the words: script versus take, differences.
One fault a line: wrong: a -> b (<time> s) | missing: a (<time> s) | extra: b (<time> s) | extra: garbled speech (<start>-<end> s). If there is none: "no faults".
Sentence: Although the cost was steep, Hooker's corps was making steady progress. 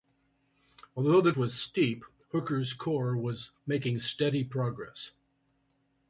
missing: cost (1.3 s)